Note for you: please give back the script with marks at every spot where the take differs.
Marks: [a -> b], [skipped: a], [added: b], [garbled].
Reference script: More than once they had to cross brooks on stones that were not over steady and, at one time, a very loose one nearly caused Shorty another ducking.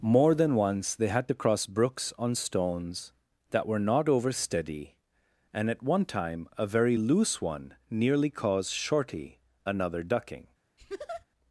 More than once they had to cross brooks on stones that were not over steady and, at one time, a very loose one nearly caused Shorty another ducking.